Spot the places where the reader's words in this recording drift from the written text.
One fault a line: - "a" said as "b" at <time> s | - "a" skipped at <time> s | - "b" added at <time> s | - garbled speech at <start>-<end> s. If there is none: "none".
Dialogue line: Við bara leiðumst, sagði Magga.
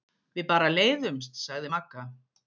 none